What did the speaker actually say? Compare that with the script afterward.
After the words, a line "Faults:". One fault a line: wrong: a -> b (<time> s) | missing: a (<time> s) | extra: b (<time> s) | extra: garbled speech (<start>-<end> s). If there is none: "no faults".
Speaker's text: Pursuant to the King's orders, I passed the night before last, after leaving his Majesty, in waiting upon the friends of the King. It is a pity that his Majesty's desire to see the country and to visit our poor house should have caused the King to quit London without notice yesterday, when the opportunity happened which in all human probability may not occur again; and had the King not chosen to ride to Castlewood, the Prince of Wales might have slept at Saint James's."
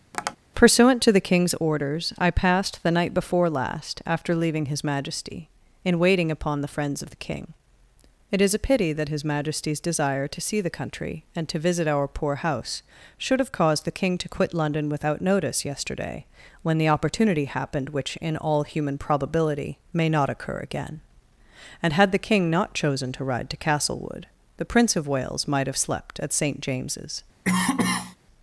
Pursuant to the King's orders, I passed the night before last, after leaving his Majesty, in waiting upon the friends of the King. It is a pity that his Majesty's desire to see the country and to visit our poor house should have caused the King to quit London without notice yesterday, when the opportunity happened which in all human probability may not occur again; and had the King not chosen to ride to Castlewood, the Prince of Wales might have slept at Saint James's."
Faults:
no faults